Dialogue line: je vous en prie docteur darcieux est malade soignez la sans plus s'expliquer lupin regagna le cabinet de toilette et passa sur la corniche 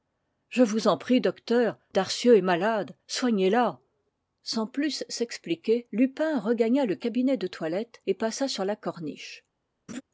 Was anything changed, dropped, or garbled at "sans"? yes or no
no